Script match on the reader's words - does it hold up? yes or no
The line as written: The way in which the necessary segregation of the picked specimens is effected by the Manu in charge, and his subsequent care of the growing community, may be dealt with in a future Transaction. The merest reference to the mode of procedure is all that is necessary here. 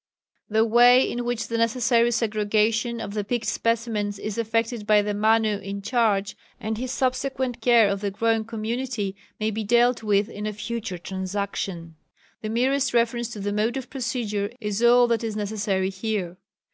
yes